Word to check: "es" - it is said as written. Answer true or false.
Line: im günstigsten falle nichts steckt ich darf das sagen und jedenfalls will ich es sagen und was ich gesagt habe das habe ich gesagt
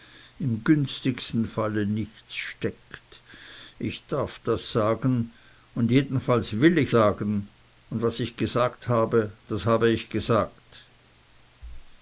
false